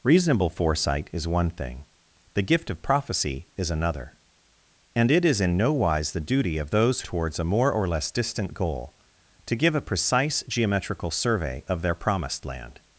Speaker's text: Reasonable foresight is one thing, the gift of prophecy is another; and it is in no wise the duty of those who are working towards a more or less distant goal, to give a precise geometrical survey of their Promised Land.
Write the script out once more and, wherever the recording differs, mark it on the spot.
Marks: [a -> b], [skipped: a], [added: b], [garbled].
Reasonable foresight is one thing, the gift of prophecy is another; and it is in no wise the duty of those [skipped: who are working] towards a more or less distant goal, to give a precise geometrical survey of their Promised Land.